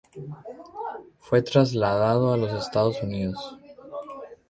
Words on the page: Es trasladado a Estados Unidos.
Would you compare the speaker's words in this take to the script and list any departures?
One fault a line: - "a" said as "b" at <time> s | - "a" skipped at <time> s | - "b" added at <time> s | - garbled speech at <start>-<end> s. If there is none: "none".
- "Es" said as "Fue" at 1.2 s
- "los" added at 2.4 s